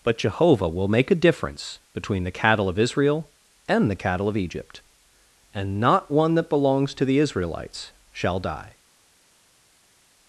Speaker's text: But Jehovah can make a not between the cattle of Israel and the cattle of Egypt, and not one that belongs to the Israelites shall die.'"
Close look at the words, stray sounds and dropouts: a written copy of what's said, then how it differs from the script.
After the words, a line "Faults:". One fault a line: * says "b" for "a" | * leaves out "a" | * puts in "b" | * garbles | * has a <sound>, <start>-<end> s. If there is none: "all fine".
But Jehovah will make a difference between the cattle of Israel and the cattle of Egypt, and not one that belongs to the Israelites shall die.'"
Faults:
* says "will" for "can"
* says "difference" for "not"